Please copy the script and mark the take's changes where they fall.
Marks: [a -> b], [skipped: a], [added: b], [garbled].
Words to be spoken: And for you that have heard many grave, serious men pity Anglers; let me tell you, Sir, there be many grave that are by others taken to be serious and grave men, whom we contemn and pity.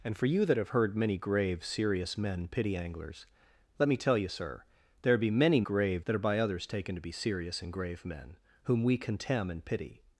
And for you that have heard many grave, serious men pity Anglers; let me tell you, Sir, there be many grave that are by others taken to be serious and grave men, whom we contemn and pity.